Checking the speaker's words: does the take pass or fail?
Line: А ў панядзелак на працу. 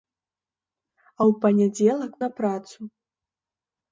pass